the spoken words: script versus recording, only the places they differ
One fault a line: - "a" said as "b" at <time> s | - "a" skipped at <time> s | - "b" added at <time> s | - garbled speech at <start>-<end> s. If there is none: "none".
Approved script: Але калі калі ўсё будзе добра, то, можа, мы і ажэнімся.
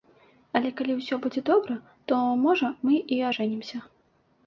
- "калі" skipped at 0.9 s